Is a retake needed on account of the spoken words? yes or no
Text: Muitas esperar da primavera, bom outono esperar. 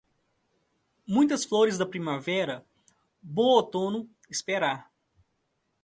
yes